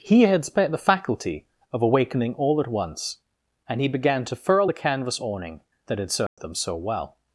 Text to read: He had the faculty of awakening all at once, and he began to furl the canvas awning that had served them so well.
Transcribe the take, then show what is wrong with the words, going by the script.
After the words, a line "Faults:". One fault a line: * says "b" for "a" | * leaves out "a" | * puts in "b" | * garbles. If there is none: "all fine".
He had spent the faculty of awakening all at once, and he began to furl the canvas awning that had served them so well.
Faults:
* puts in "spent"